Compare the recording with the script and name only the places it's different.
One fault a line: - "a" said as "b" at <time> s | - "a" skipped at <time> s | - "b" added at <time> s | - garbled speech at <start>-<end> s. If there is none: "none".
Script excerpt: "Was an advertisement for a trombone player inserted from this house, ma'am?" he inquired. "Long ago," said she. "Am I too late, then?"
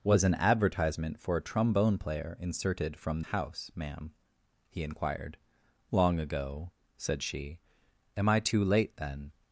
- "this" skipped at 3.2 s